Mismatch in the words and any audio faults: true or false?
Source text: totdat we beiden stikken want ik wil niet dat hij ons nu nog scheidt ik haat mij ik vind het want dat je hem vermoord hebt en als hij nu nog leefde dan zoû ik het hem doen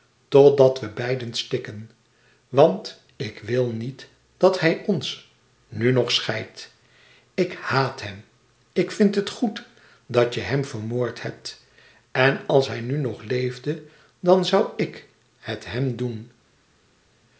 true